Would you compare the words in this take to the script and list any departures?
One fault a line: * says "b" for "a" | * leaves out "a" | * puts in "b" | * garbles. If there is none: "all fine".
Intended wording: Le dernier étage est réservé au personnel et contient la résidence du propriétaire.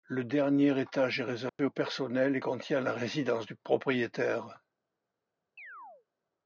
all fine